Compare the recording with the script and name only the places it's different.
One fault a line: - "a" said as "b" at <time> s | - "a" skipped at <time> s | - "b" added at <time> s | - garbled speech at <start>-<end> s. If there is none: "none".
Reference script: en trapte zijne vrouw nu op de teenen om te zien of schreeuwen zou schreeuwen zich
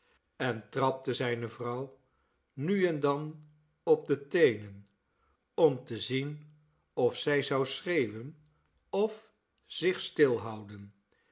- "en dan" added at 2.9 s
- "schreeuwen" said as "zij" at 7.2 s
- "of" added at 8.9 s